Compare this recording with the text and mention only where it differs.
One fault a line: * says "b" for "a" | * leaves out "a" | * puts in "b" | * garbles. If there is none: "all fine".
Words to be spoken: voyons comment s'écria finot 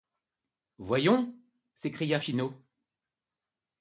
* leaves out "comment"